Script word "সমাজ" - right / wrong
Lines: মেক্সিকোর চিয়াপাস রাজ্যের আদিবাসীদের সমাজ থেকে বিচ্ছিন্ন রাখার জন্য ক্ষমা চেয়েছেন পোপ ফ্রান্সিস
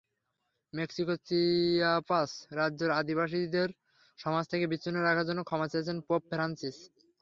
right